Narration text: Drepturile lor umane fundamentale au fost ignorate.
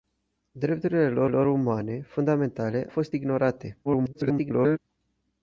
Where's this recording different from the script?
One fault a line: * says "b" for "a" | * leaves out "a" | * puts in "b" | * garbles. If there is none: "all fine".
* puts in "lor"
* leaves out "au"
* garbles